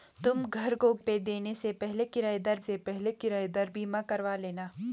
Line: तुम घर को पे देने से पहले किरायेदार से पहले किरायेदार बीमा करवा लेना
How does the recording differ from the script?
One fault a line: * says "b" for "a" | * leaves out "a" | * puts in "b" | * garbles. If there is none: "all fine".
all fine